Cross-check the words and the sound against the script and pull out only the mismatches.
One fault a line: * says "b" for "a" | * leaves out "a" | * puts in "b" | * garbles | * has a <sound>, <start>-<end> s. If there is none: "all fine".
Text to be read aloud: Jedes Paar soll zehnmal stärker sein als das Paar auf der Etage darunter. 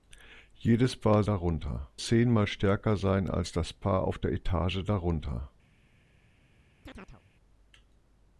* says "darunter" for "soll"
* has a chirp, 6.8-7.2 s